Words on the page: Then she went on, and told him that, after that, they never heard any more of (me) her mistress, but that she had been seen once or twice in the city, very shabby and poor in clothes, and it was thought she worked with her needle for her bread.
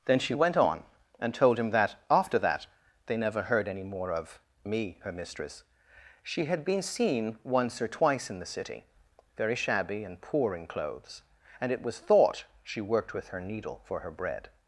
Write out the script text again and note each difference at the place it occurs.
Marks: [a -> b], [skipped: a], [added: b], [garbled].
Then she went on, and told him that, after that, they never heard any more of (me) her mistress, [skipped: but that] she had been seen once or twice in the city, very shabby and poor in clothes, and it was thought she worked with her needle for her bread.